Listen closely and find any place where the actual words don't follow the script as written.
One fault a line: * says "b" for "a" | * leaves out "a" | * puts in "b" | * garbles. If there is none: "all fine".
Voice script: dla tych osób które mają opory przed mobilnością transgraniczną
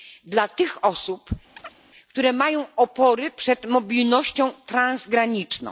all fine